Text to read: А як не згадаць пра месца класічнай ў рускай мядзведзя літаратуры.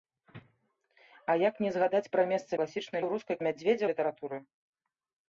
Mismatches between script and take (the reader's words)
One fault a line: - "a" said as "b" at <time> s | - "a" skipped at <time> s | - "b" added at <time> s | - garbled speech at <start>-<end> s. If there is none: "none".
none